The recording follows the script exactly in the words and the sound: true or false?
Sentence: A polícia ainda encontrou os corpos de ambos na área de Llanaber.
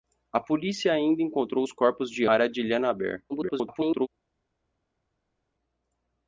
false